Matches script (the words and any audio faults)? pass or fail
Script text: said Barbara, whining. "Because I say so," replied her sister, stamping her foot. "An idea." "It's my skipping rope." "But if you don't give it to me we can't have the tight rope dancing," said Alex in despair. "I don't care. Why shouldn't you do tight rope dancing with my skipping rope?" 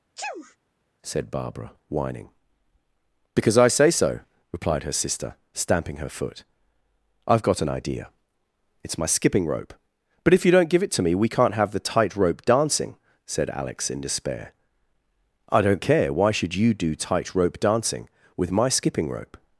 fail